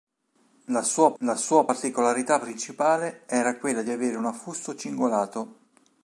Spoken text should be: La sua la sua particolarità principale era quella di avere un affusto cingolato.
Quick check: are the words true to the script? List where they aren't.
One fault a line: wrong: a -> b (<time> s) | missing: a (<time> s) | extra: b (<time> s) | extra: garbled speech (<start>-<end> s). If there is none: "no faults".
no faults